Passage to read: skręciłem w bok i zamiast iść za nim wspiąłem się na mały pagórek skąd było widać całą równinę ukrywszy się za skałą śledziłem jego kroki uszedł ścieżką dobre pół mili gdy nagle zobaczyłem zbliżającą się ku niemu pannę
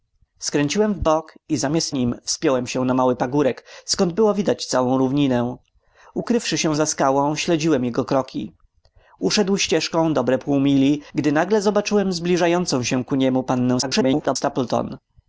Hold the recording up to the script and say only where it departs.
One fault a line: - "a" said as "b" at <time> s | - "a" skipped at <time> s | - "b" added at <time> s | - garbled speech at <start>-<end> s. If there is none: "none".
- "iść za" skipped at 1.9 s
- garbled speech at 13.8-14.4 s